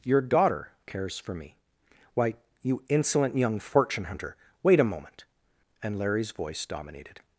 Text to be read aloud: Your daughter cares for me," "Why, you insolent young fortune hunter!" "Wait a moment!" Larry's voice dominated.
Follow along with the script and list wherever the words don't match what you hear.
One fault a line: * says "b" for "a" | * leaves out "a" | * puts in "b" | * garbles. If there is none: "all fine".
* puts in "and"